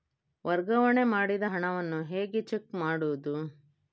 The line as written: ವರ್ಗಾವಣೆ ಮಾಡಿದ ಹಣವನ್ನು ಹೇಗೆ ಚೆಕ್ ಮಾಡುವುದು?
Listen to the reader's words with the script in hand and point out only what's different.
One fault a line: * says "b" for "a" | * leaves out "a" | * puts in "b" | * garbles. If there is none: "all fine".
all fine